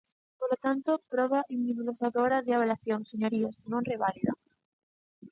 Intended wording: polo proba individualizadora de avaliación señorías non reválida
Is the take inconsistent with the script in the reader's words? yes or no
yes